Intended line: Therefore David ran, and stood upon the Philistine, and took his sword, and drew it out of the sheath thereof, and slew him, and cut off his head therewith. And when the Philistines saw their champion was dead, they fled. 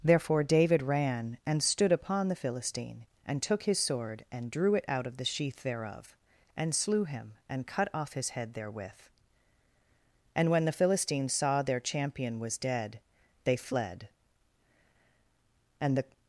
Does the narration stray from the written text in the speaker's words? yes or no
yes